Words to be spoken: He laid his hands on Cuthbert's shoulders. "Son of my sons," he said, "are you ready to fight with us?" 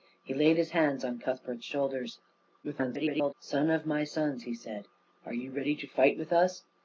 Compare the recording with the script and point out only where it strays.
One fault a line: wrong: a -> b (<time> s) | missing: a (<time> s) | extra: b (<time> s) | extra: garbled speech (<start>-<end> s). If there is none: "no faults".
extra: garbled speech (2.6-3.3 s)